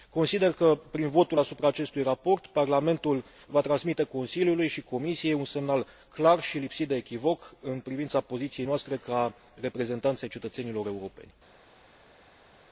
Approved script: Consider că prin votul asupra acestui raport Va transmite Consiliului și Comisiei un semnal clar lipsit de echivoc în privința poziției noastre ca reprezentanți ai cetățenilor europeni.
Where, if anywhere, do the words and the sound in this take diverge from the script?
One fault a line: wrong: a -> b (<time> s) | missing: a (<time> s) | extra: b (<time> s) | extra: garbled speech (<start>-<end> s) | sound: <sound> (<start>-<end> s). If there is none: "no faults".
extra: Parlamentul (2.5 s)
extra: și (6.4 s)